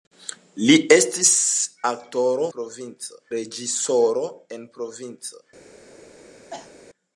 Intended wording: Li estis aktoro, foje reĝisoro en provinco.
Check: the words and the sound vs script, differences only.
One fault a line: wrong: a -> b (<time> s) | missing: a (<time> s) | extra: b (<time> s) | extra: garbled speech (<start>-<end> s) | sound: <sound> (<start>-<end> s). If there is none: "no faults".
wrong: foje -> provinco (2.5 s)
sound: cough (6.5-6.7 s)